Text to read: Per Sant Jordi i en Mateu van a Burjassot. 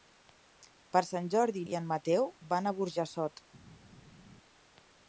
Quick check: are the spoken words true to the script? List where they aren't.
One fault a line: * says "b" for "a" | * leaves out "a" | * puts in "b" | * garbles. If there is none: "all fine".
all fine